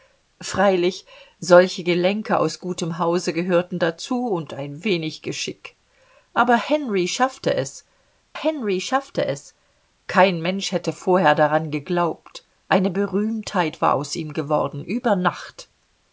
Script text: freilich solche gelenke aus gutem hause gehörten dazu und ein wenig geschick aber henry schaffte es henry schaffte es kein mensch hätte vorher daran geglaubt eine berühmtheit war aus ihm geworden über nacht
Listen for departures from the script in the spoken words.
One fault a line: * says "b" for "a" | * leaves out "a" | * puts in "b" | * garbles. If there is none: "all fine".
all fine